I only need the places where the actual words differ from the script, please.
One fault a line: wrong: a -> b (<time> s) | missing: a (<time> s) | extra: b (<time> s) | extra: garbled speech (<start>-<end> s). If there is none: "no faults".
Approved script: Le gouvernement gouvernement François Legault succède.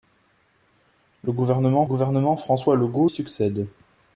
no faults